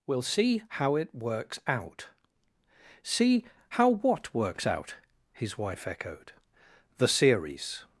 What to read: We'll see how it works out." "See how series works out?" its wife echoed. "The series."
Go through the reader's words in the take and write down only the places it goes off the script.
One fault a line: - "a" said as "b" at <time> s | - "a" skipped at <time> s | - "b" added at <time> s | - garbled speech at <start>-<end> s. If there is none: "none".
- "series" said as "what" at 3.9 s
- "its" said as "his" at 5.3 s